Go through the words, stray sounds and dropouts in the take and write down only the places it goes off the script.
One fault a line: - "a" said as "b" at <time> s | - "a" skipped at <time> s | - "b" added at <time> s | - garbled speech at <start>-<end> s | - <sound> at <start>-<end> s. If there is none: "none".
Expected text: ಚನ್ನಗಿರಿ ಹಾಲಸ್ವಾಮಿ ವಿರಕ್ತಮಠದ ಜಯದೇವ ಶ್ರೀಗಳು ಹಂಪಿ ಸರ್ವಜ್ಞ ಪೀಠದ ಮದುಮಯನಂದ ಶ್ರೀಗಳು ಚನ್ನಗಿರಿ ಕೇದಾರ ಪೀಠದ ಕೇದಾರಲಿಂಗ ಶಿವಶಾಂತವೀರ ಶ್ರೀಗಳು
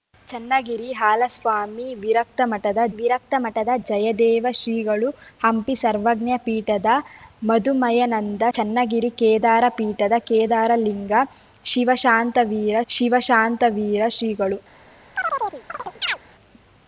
- "ವಿರಕ್ತಮಠದ" added at 3.0 s
- "ಶ್ರೀಗಳು" skipped at 8.4 s
- "ಶಿವಶಾಂತವೀರ" added at 12.9 s
- chirp at 15.2-16.2 s